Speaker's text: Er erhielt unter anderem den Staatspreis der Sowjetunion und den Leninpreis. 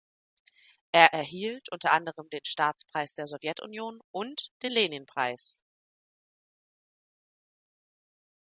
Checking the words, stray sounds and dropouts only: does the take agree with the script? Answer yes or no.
yes